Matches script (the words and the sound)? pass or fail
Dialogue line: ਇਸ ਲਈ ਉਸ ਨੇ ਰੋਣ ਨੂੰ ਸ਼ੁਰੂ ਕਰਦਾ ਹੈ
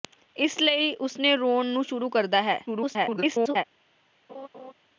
fail